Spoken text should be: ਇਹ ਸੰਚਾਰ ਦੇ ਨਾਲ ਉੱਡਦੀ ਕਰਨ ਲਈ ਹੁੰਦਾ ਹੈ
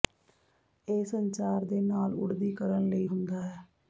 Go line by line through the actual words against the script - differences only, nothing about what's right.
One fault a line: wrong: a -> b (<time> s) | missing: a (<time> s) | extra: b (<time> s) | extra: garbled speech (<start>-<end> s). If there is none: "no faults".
no faults